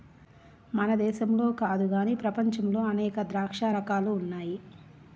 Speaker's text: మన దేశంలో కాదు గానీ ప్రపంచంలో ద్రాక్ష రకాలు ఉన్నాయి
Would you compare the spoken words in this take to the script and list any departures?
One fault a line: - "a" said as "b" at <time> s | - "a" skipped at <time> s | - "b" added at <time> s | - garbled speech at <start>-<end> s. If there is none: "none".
- "అనేక" added at 2.9 s